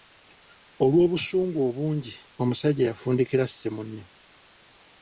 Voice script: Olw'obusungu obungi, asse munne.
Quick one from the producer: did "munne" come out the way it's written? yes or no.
yes